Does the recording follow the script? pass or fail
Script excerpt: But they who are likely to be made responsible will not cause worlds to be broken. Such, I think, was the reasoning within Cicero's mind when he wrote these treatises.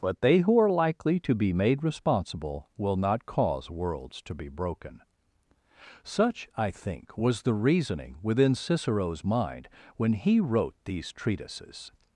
pass